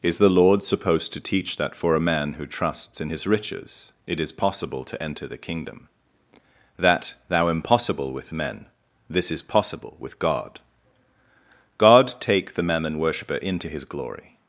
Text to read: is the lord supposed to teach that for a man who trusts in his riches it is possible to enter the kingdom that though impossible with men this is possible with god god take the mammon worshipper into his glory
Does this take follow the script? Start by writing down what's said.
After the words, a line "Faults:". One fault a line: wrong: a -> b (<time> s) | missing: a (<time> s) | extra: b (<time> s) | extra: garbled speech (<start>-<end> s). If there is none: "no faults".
is the lord supposed to teach that for a man who trusts in his riches it is possible to enter the kingdom that thou impossible with men this is possible with god god take the mammon worshipper into his glory
Faults:
wrong: though -> thou (7.3 s)